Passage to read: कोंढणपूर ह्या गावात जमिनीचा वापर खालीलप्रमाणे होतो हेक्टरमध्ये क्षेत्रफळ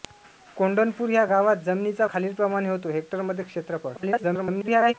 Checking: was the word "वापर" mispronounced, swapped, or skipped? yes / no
yes